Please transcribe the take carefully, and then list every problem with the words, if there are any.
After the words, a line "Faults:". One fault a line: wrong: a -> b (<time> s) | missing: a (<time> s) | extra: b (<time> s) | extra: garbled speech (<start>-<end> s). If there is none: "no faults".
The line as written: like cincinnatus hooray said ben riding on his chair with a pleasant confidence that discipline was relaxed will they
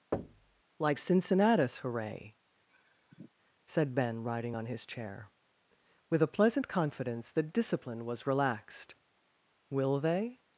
like cincinnatus hooray said ben riding on his chair with a pleasant confidence that discipline was relaxed will they
Faults:
no faults